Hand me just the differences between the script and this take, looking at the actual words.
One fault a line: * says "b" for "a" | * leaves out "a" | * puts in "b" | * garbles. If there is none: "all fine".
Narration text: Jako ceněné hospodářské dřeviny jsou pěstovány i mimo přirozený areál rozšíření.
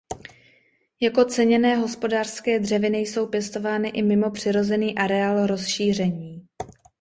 all fine